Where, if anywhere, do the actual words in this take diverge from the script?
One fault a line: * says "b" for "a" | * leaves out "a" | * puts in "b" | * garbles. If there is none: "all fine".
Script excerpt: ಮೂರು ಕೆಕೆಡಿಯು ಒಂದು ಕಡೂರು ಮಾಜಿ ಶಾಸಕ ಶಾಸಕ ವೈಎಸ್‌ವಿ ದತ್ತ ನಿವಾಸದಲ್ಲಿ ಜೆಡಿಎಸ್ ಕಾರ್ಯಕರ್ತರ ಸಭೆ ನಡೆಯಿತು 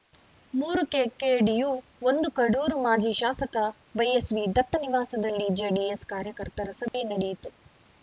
* leaves out "ಶಾಸಕ"